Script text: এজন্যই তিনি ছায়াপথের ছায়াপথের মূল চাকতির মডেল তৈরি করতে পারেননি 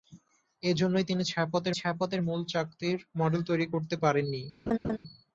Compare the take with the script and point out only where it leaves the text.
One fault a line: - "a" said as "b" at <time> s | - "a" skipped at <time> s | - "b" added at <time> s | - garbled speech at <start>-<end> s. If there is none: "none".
none